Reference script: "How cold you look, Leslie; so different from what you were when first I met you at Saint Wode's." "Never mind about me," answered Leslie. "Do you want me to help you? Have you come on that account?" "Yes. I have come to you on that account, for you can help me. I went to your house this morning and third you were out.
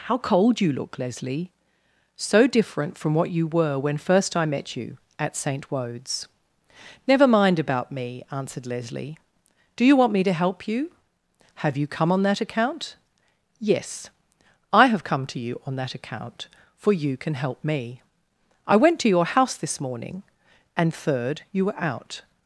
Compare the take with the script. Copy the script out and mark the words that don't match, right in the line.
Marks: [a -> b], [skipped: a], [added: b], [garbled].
"How cold you look, Leslie; so different from what you were when first I met you at Saint Wode's." "Never mind about me," answered Leslie. "Do you want me to help you? Have you come on that account?" "Yes. I have come to you on that account, for you can help me. I went to your house this morning and third you were out.